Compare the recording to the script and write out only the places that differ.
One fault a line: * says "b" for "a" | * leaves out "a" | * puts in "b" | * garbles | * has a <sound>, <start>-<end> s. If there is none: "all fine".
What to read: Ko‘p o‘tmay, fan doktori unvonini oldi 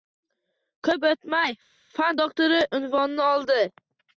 all fine